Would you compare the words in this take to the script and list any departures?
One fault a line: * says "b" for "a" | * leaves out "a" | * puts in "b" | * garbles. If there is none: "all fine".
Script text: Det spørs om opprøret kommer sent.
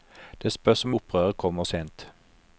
all fine